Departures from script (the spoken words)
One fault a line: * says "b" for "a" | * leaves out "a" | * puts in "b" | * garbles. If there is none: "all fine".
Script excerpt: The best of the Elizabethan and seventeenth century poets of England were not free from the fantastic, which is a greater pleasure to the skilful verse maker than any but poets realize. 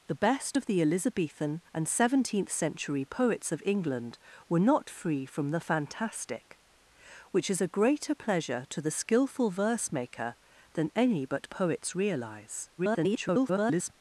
* garbles